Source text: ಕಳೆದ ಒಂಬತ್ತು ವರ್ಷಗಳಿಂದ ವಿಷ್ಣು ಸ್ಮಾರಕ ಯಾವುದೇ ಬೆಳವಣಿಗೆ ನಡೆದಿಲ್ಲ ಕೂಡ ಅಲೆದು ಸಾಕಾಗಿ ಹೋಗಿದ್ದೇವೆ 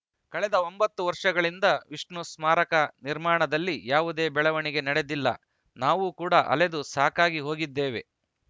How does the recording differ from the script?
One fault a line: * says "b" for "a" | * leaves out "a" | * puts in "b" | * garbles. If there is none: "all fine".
* puts in "ನಿರ್ಮಾಣದಲ್ಲಿ"
* puts in "ನಾವು"